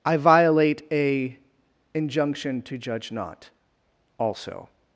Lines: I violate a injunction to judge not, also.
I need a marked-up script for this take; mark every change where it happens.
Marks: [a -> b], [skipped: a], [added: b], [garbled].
I violate a injunction to judge not, also.